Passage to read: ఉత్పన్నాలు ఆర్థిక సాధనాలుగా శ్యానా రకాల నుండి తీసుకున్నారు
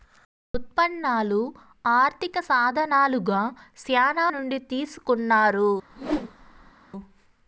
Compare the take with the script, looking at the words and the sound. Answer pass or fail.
fail